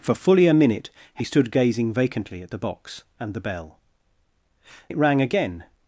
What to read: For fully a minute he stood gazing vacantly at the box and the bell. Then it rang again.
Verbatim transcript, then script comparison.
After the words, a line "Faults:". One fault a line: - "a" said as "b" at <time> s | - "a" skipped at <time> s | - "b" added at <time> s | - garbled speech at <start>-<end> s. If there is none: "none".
For fully a minute he stood gazing vacantly at the box and the bell. It rang again.
Faults:
- "Then" skipped at 3.8 s